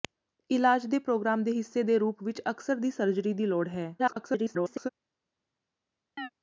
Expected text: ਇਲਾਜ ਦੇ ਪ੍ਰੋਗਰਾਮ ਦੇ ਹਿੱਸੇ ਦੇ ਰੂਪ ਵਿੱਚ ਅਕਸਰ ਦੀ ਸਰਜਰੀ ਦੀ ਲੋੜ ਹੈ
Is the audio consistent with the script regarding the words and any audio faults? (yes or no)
no